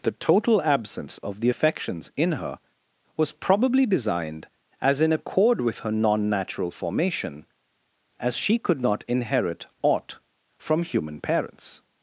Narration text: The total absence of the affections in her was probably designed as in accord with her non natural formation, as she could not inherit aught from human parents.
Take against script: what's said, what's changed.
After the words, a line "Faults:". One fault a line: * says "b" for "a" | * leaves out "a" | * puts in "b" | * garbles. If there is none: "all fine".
The total absence of the affections in her was probably designed as in accord with her non natural formation, as she could not inherit aught from human parents.
Faults:
all fine